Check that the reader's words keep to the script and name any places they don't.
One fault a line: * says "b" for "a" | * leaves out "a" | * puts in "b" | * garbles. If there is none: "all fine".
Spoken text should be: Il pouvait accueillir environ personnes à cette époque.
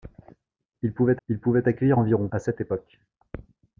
* puts in "il pouvait"
* leaves out "personnes"